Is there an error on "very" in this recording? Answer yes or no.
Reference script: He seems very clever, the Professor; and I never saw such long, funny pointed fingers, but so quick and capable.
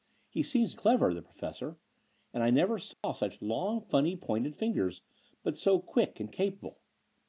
yes